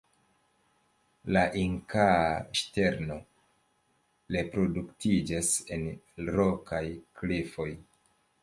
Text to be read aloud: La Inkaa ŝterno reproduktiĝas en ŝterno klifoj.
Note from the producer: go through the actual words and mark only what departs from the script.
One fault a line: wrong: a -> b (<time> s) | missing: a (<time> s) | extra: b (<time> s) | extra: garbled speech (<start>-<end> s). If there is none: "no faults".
wrong: ŝterno -> rokaj (6.4 s)